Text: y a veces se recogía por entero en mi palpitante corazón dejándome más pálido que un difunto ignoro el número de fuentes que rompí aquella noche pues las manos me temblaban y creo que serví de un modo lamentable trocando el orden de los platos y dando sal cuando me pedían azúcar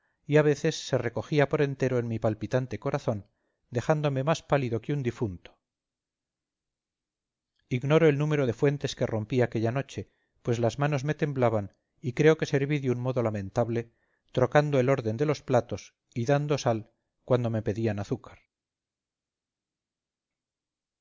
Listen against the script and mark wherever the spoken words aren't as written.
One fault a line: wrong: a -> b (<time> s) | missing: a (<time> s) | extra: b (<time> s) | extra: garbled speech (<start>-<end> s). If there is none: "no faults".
no faults